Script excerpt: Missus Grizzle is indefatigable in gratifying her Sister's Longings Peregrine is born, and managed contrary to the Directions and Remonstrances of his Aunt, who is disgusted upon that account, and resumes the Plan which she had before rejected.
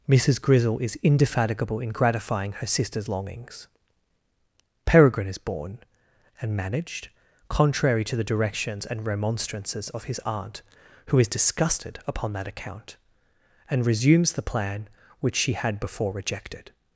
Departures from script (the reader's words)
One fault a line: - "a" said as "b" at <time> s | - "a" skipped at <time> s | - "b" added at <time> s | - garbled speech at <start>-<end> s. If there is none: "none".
none